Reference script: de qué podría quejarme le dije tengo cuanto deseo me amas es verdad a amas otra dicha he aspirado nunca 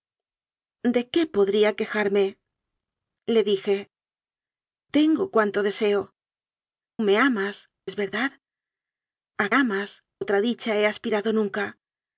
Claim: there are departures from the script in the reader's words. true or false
false